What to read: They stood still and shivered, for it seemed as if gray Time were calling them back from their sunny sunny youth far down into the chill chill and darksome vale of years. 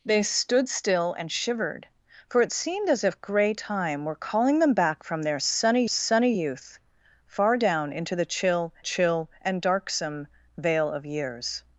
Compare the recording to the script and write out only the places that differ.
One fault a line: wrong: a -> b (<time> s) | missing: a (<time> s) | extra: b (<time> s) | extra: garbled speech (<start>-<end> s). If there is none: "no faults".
no faults